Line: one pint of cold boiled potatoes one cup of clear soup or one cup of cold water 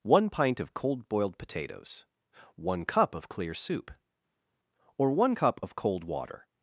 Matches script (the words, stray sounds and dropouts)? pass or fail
pass